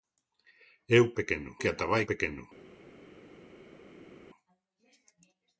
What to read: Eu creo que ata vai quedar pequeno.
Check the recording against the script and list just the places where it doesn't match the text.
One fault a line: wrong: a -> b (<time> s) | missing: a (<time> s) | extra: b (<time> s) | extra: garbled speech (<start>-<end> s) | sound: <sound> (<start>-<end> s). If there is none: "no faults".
wrong: creo -> pequeno (1.2 s)
missing: quedar (2.0 s)